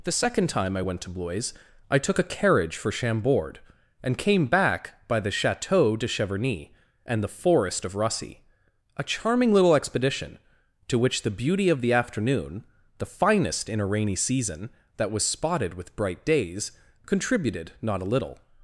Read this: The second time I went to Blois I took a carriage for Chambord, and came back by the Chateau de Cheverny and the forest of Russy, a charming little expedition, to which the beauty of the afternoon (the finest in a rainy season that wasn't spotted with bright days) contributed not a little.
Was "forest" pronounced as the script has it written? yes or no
yes